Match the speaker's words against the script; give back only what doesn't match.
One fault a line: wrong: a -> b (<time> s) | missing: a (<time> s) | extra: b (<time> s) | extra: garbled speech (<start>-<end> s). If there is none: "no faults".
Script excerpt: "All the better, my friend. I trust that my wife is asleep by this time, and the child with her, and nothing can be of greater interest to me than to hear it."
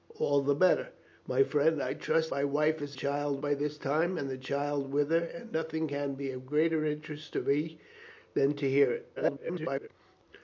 missing: that (2.3 s)
wrong: asleep -> child (2.9 s)
extra: garbled speech (9.2-9.9 s)